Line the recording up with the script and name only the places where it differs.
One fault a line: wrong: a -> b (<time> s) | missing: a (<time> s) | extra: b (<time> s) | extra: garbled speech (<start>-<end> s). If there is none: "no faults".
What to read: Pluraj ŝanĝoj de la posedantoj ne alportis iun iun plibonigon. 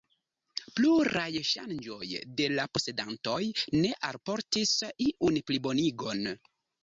missing: iun (5.4 s)